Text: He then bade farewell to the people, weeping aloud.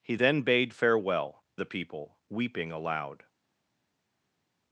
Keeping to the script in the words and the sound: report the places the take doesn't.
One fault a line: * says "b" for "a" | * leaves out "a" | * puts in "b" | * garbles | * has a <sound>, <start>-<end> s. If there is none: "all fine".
* leaves out "to"